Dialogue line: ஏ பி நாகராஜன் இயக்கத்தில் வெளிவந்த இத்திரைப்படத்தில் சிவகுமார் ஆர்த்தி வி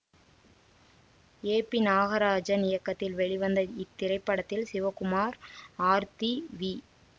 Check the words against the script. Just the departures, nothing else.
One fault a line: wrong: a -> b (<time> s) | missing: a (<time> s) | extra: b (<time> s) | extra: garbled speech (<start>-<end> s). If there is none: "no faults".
no faults